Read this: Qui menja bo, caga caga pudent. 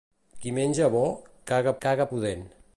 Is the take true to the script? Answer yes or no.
yes